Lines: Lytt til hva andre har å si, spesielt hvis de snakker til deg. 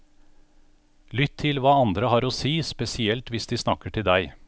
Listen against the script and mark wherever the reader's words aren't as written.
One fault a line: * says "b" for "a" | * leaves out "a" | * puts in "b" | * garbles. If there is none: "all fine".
all fine